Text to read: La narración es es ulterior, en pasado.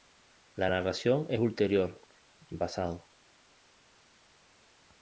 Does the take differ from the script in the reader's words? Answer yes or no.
yes